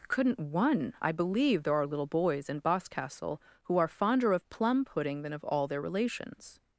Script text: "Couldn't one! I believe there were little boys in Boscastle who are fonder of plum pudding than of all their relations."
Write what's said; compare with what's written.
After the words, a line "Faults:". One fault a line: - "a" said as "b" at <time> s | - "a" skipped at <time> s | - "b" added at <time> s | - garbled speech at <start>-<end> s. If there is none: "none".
"Couldn't one! I believe there are little boys in Boscastle who are fonder of plum pudding than of all their relations."
Faults:
- "were" said as "are" at 1.7 s